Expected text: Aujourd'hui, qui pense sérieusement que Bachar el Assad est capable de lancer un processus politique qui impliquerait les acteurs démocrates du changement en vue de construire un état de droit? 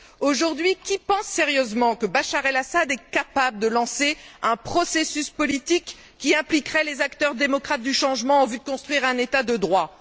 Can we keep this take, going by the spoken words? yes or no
yes